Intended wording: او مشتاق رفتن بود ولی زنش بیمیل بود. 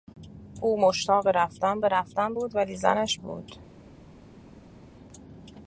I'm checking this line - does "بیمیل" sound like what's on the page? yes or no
no